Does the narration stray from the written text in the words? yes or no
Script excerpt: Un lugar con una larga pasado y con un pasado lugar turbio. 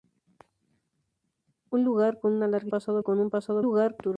no